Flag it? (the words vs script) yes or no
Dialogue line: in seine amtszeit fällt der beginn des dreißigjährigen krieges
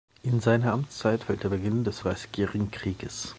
no